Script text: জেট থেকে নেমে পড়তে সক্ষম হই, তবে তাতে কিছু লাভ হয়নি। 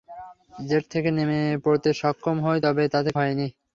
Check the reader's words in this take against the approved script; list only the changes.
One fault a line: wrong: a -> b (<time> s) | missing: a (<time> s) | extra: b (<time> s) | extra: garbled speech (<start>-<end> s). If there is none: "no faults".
missing: কিছু লাভ (3.1 s)